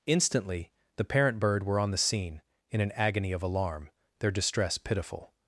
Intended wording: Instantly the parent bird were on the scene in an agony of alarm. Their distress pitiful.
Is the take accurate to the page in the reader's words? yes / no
yes